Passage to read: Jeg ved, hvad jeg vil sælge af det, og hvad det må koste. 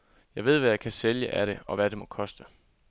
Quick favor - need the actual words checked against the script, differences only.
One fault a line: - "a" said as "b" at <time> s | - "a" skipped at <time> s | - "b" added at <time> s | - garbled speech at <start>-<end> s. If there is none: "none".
- "vil" said as "kan" at 0.8 s